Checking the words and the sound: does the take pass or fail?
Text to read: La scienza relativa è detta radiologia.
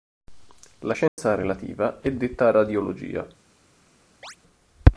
fail